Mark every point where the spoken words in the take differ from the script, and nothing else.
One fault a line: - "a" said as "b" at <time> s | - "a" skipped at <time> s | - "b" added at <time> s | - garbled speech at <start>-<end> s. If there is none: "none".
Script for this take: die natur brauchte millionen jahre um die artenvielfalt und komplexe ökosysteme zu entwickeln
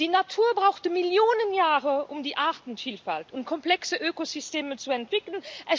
none